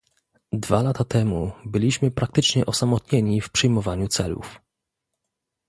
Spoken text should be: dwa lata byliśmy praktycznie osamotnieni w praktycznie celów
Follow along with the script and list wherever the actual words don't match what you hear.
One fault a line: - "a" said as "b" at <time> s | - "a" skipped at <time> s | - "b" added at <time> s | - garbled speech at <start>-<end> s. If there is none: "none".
- "temu" added at 1.0 s
- "praktycznie" said as "przyjmowaniu" at 3.5 s